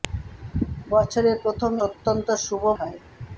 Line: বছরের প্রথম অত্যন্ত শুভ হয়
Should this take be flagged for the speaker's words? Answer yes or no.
no